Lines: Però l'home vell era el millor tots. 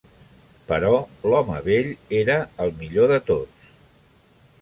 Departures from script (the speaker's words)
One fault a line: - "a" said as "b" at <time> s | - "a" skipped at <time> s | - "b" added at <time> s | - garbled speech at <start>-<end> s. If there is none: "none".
- "de" added at 3.1 s